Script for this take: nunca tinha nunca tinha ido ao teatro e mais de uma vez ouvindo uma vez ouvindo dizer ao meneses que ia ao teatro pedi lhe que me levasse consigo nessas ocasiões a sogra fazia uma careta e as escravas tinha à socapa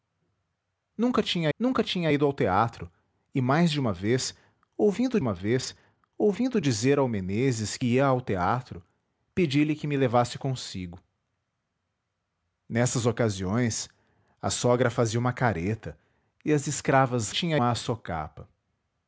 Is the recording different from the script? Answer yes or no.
no